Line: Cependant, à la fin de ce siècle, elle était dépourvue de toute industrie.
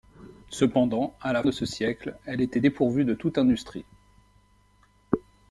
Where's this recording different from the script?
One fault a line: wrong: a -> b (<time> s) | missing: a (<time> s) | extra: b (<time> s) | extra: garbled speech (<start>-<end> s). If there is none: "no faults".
missing: fin (1.4 s)